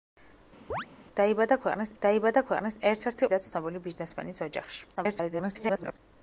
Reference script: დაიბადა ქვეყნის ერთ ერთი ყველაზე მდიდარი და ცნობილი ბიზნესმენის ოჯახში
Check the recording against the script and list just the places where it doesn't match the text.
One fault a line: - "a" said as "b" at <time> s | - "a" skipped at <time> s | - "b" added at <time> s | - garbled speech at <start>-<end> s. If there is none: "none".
- "დაიბადა ქვეყნის" added at 2.0 s
- "ყველაზე მდიდარი" skipped at 3.3 s
- garbled speech at 5.0-6.0 s